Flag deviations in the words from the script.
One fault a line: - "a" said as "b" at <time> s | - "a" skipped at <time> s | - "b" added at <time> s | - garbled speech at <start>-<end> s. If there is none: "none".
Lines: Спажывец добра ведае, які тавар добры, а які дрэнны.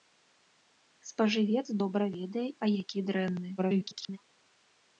- "які тавар добры" skipped at 2.5 s
- garbled speech at 3.6-4.2 s